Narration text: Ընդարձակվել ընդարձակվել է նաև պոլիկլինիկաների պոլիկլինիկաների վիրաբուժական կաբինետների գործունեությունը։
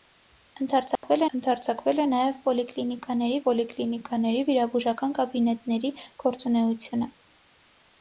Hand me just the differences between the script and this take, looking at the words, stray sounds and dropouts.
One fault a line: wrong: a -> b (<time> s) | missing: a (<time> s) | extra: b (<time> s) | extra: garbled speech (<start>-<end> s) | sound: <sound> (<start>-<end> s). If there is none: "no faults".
sound: dropout (1.0-1.0 s)